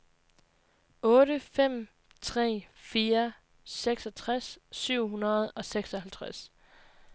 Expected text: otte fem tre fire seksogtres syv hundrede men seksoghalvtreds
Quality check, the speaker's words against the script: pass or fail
fail